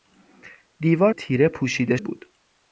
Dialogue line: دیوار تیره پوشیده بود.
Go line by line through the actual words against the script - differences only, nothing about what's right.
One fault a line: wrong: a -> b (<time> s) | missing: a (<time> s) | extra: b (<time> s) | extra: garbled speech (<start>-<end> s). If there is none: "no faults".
no faults